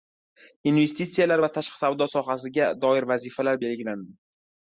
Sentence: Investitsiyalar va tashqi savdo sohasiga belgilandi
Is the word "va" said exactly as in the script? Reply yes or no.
yes